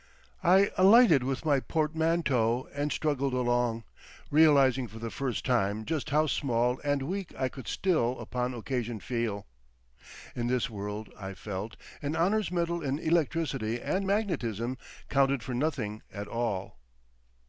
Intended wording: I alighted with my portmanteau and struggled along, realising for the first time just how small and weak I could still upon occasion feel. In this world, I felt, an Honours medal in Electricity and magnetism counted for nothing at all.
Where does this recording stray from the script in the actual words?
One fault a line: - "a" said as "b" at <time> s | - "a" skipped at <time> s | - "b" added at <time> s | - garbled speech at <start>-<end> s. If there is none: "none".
none